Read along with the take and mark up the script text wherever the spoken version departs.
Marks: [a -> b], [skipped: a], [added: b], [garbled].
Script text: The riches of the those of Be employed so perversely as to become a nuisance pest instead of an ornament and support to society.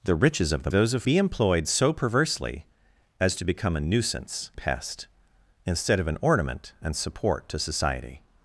The riches of the those of Be employed so perversely as to become a nuisance pest instead of an ornament and support to society.